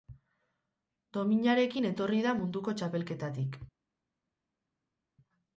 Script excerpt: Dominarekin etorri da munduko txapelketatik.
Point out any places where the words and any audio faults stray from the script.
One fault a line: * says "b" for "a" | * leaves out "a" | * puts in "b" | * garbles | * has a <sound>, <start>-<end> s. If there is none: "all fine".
all fine